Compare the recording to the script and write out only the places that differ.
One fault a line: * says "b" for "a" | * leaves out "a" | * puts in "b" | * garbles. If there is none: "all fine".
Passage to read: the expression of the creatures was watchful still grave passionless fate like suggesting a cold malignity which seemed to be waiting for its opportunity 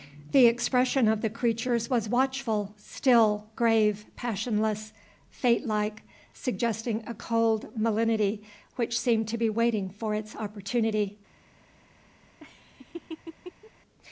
all fine